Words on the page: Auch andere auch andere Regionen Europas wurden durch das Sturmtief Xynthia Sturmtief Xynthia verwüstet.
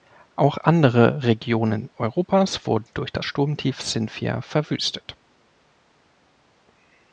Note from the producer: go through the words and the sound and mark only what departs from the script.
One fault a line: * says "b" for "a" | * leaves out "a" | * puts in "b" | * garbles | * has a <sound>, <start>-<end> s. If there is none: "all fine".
* leaves out "auch andere"
* leaves out "Sturmtief Xynthia"